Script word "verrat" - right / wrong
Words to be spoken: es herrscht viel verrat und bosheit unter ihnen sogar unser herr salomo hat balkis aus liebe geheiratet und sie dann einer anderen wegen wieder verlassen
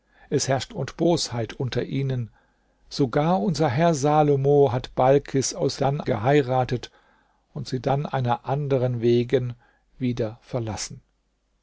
wrong